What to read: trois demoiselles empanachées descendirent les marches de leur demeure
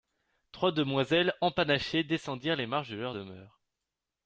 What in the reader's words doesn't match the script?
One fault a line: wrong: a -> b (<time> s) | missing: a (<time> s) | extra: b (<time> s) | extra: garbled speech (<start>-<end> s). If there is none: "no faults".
no faults